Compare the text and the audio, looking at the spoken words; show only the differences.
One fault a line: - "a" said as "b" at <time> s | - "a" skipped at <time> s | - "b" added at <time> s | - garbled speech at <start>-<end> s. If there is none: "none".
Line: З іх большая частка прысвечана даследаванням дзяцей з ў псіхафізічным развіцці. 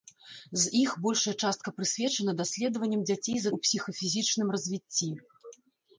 none